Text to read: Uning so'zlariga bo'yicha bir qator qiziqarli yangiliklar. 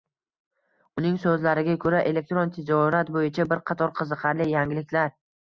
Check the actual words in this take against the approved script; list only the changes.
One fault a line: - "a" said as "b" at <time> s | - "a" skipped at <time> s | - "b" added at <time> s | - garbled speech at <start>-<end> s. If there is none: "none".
- "ko'ra elektron tijorat" added at 1.8 s